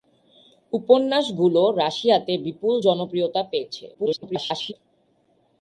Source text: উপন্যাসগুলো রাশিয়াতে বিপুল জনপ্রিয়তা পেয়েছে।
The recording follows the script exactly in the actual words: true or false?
false